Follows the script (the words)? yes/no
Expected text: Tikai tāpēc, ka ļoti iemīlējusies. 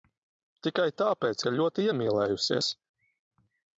yes